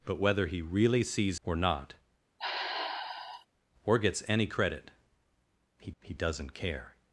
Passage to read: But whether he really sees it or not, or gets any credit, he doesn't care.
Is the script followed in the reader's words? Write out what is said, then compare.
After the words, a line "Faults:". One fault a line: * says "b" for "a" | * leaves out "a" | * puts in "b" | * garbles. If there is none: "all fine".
But whether he really sees or not, or gets any credit, he he doesn't care.
Faults:
* leaves out "it"
* puts in "he"